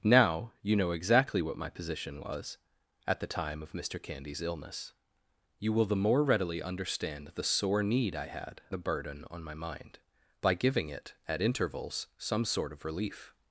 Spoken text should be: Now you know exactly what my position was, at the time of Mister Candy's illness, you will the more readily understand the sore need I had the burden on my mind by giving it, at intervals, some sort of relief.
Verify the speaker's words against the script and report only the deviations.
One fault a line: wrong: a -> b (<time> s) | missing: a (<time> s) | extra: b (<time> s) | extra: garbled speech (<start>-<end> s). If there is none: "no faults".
no faults